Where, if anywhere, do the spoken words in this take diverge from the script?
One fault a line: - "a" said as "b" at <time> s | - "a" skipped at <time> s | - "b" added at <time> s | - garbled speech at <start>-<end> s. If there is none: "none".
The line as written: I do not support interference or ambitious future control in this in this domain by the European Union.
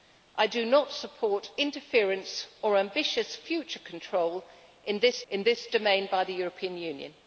none